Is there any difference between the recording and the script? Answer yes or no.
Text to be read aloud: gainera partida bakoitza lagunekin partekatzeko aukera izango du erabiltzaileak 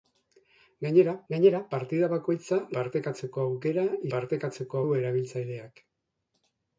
yes